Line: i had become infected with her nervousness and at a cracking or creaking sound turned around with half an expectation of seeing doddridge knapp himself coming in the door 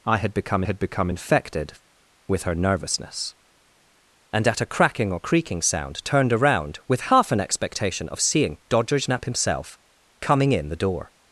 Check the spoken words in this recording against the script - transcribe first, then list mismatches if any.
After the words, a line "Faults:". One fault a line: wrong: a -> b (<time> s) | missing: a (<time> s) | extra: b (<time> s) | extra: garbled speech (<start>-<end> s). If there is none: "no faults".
i had become had become infected with her nervousness and at a cracking or creaking sound turned around with half an expectation of seeing doddridge knapp himself coming in the door
Faults:
extra: had become (0.6 s)